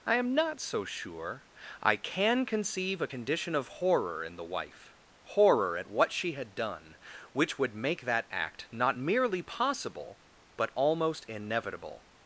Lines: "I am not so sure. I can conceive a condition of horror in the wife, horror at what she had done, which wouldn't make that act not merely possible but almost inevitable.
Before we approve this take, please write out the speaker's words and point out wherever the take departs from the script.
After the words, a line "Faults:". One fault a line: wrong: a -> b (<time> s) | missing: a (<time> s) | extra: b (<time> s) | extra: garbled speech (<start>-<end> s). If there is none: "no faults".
"I am not so sure. I can conceive a condition of horror in the wife, horror at what she had done, which would make that act not merely possible but almost inevitable.
Faults:
wrong: wouldn't -> would (7.6 s)